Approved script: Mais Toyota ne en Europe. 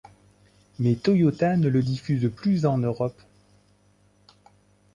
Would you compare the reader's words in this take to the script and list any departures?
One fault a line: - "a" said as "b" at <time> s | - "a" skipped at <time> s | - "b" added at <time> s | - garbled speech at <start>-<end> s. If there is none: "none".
- "le diffuse plus" added at 1.7 s